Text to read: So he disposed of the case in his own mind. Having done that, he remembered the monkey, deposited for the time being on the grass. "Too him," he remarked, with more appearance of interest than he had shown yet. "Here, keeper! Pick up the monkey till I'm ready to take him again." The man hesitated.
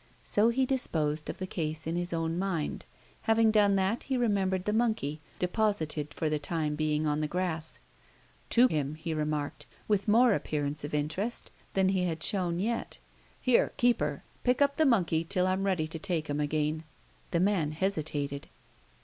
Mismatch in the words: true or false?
false